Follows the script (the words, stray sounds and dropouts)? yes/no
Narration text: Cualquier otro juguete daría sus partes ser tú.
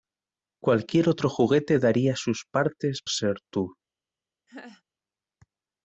no